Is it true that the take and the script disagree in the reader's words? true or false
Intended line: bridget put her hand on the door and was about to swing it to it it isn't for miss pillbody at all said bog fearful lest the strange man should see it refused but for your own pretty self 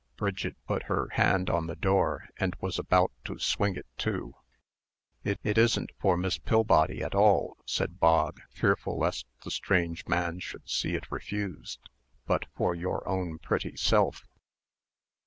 false